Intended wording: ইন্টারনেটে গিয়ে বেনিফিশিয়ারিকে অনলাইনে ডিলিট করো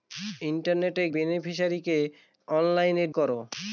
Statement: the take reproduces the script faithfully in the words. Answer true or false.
false